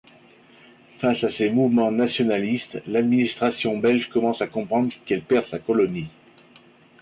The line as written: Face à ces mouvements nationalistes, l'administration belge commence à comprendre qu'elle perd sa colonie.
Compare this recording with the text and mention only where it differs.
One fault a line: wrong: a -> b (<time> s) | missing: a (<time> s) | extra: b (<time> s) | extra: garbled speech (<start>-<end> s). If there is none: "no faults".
no faults